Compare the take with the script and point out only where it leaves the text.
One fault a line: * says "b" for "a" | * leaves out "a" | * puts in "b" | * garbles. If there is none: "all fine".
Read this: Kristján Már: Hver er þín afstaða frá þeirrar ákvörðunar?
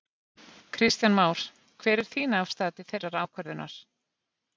* says "til" for "frá"